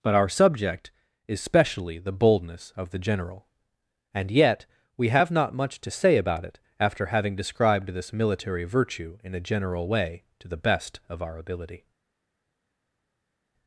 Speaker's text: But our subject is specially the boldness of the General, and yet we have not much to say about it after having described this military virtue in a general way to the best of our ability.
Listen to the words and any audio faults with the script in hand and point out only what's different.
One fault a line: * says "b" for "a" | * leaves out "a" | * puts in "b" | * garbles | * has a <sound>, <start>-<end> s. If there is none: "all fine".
all fine